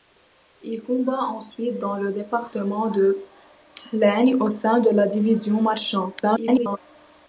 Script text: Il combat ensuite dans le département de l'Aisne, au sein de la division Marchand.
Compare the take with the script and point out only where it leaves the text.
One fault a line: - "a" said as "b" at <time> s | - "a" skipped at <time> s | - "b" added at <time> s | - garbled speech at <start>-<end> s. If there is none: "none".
- garbled speech at 6.2-6.8 s